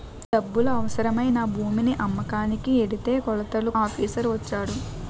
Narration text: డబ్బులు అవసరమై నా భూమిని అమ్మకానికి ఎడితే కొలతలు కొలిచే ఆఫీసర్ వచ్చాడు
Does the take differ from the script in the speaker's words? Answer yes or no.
yes